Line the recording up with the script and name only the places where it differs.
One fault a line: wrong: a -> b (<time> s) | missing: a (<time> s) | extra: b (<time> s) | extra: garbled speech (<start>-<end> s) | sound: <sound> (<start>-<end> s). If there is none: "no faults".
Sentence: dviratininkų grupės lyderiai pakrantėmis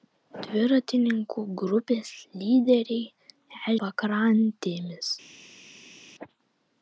no faults